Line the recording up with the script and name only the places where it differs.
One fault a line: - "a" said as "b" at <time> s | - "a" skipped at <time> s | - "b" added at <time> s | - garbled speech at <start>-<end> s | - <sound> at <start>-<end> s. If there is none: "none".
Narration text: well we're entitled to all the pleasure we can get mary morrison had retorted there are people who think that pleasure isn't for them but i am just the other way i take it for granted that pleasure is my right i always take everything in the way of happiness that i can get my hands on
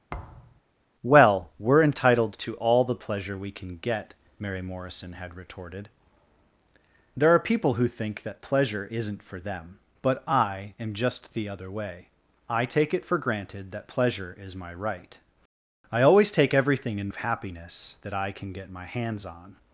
- thud at 0.1-0.6 s
- "the way" skipped at 17.1 s